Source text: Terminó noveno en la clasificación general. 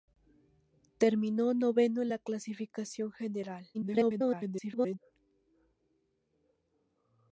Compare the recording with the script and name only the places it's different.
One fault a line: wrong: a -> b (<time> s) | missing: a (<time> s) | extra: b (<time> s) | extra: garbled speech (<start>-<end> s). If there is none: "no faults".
extra: garbled speech (3.7-5.0 s)